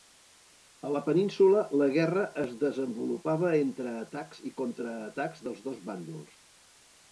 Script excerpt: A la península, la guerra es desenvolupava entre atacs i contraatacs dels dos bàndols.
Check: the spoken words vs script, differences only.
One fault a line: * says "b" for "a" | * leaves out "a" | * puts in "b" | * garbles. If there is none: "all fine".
all fine